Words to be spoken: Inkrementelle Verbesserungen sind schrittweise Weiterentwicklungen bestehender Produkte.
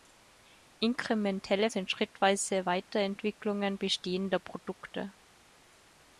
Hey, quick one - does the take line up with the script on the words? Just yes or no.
no